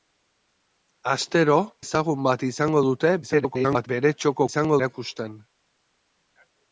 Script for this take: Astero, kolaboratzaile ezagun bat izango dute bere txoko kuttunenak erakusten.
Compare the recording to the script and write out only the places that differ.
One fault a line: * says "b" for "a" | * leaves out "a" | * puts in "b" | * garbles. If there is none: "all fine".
* leaves out "kolaboratzaile"
* garbles
* says "izango" for "kuttunenak"